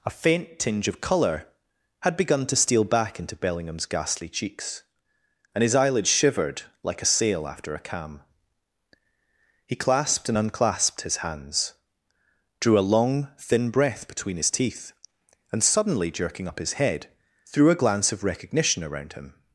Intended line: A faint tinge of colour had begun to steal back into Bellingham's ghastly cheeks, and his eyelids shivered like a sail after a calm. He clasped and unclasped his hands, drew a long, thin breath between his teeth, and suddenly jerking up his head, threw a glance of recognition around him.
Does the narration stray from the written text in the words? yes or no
no